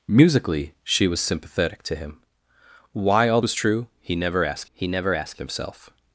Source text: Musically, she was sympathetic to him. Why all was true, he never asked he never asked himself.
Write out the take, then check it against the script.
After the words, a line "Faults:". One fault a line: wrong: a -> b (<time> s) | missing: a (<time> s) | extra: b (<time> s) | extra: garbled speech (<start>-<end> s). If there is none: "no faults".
Musically, she was sympathetic to him. Why all was true, he never asked he never asked himself.
Faults:
no faults